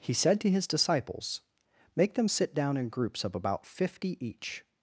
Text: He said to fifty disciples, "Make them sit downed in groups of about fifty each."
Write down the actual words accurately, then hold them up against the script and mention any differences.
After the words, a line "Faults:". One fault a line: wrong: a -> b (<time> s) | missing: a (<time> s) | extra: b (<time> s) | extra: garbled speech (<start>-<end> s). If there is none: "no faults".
He said to his disciples, "Make them sit down in groups of about fifty each."
Faults:
wrong: fifty -> his (0.5 s)
wrong: downed -> down (2.5 s)